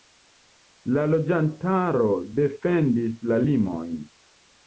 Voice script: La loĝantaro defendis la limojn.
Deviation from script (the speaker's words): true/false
false